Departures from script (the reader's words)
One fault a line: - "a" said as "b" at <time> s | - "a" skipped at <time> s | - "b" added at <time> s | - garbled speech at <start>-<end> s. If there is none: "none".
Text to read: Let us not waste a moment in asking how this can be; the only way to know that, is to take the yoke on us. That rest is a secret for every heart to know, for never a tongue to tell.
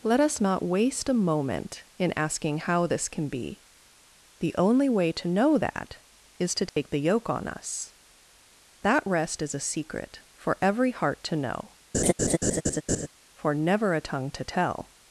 none